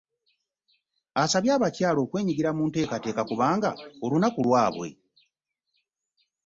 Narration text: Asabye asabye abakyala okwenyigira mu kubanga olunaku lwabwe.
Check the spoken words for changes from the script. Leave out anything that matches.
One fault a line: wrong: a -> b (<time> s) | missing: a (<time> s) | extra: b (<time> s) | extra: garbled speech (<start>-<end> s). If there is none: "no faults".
missing: asabye (1.5 s)
extra: nteekateeka (2.7 s)